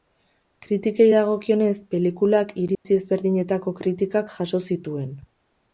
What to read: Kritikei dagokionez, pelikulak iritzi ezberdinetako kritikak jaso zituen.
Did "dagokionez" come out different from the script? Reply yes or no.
no